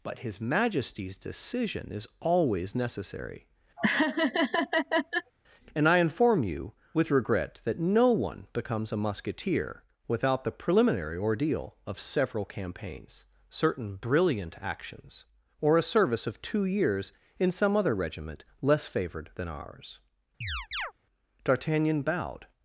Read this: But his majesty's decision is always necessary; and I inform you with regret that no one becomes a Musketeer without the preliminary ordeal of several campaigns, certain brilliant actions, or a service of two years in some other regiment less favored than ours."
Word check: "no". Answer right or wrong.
right